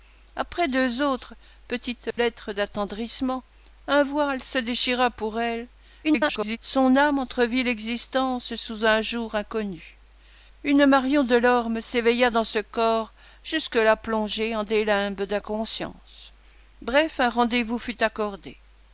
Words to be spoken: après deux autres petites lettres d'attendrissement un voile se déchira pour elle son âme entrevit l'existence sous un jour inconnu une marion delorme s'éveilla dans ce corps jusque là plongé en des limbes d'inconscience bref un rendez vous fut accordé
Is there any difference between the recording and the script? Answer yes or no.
yes